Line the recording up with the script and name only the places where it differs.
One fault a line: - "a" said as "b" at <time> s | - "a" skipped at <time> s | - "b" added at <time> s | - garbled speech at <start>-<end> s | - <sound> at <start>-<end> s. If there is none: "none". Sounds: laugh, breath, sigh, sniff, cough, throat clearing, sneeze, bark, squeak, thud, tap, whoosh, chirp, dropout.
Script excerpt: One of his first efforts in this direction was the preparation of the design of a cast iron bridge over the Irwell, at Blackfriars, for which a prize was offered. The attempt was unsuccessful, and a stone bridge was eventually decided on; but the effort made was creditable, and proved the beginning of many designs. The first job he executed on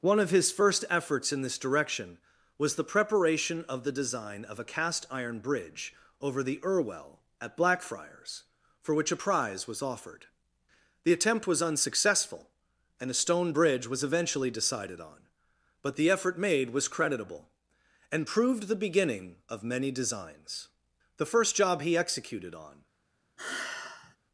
- sigh at 23.4-24.2 s